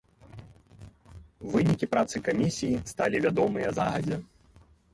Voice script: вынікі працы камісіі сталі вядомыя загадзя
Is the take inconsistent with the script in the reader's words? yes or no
no